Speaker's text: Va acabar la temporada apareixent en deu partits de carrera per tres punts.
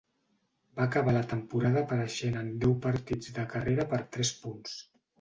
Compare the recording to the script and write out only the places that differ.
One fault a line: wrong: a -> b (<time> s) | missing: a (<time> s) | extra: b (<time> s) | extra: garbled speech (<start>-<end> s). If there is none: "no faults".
no faults